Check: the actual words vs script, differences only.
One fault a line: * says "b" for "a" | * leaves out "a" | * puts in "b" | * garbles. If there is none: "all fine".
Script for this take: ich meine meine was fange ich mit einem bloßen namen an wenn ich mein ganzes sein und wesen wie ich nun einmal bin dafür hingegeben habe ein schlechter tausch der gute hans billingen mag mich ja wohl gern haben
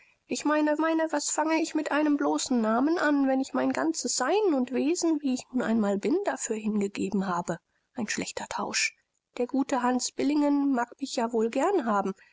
all fine